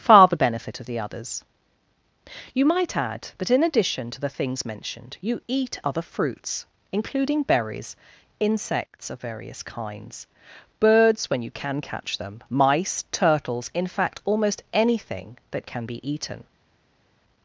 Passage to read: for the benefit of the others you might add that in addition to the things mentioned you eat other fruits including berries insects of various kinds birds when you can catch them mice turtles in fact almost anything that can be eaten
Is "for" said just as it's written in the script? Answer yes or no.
no